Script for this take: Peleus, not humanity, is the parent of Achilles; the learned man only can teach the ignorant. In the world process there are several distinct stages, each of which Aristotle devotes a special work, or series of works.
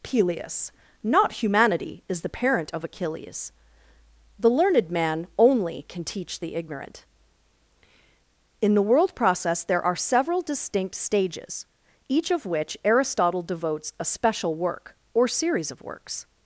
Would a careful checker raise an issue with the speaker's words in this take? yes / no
no